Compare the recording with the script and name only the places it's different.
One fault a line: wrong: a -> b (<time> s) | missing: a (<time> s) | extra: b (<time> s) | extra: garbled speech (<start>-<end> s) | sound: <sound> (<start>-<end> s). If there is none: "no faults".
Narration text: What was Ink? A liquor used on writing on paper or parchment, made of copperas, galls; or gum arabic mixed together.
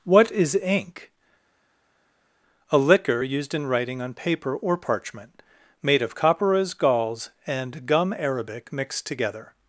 wrong: was -> is (0.3 s)
wrong: on -> in (3.5 s)
wrong: or -> and (7.5 s)